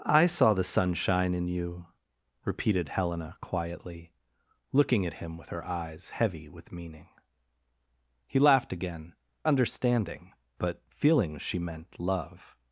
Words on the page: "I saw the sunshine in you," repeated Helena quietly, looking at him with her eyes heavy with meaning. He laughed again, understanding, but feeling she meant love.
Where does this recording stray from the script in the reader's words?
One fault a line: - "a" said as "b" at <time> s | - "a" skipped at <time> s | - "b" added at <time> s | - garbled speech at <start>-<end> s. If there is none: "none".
none